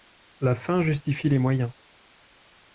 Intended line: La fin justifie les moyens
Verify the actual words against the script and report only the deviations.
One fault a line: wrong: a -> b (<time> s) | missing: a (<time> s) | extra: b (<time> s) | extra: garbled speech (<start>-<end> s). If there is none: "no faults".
no faults